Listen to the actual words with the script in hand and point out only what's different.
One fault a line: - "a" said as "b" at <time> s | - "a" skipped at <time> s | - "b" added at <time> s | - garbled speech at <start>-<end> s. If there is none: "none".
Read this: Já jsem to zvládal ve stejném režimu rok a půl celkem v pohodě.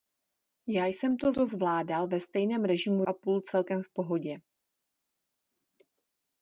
- "to" added at 1.3 s
- "rok" skipped at 3.0 s